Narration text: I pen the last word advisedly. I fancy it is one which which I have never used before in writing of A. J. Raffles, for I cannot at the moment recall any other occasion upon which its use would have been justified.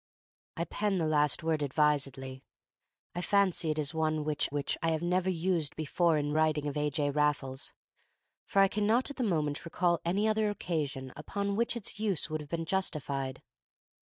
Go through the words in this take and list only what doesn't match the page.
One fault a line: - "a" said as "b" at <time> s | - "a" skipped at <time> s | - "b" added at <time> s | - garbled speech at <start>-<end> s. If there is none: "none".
none